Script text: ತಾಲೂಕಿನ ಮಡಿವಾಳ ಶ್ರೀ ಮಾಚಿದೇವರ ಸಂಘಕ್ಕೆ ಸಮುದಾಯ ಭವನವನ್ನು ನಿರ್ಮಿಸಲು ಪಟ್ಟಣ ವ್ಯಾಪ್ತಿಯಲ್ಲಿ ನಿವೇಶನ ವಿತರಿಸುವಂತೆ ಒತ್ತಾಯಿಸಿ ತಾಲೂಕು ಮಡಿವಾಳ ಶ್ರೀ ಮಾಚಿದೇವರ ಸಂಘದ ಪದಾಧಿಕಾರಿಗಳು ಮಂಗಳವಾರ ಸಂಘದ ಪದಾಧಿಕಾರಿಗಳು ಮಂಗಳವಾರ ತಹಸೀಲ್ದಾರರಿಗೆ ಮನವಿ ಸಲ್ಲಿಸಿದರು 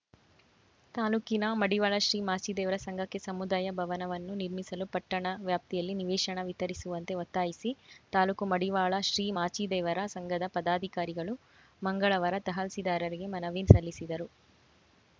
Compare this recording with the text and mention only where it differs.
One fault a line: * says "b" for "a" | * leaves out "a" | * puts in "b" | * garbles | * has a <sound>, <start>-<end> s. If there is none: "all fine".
* leaves out "ಸಂಘದ ಪದಾಧಿಕಾರಿಗಳು ಮಂಗಳವಾರ"